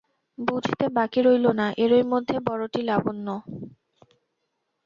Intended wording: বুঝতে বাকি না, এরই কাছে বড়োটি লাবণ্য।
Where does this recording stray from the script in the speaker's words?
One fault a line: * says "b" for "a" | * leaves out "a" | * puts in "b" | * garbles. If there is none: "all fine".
* puts in "রইল"
* says "মধ্যে" for "কাছে"